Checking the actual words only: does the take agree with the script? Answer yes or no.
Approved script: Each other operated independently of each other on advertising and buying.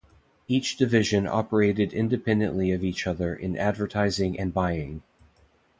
no